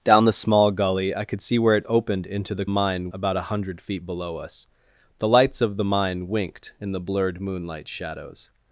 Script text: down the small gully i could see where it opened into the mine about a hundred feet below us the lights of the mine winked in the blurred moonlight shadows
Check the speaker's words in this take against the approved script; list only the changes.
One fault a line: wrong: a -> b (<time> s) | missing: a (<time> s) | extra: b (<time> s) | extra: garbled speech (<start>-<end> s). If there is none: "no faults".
no faults